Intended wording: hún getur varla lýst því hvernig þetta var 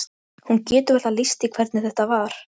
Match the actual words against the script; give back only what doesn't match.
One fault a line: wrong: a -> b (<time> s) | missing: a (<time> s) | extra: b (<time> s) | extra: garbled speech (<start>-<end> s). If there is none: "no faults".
no faults